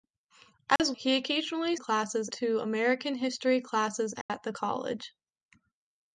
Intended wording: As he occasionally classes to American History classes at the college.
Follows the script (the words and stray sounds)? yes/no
no